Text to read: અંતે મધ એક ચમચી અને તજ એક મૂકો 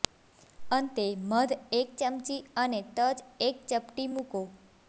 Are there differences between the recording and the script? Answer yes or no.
yes